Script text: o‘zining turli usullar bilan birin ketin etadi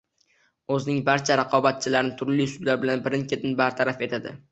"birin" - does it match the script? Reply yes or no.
yes